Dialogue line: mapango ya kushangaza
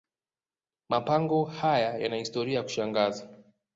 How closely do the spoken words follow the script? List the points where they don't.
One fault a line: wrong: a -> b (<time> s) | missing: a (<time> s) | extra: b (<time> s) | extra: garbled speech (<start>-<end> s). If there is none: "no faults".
extra: haya yana historia (1.4 s)